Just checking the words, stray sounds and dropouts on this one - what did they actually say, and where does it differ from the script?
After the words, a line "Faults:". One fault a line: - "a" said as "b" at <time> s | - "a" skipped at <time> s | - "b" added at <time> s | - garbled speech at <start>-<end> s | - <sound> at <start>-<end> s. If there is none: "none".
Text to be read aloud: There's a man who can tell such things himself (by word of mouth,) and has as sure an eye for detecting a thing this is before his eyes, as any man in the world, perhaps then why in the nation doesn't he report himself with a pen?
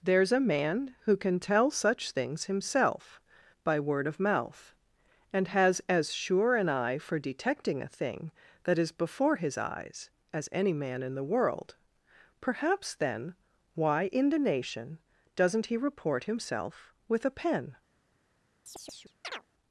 There's a man who can tell such things himself (by word of mouth,) and has as sure an eye for detecting a thing that is before his eyes, as any man in the world, perhaps then why in the nation doesn't he report himself with a pen?
Faults:
- "this" said as "that" at 8.6 s
- chirp at 18.7-19.4 s